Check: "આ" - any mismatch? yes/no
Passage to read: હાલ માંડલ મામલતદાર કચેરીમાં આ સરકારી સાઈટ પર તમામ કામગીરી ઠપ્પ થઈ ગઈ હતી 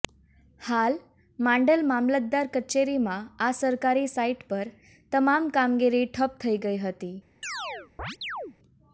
no